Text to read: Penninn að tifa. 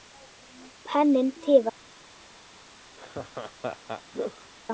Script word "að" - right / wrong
right